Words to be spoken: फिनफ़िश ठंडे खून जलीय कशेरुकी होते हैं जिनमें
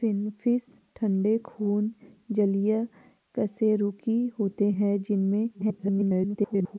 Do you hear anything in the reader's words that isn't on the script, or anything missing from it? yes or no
yes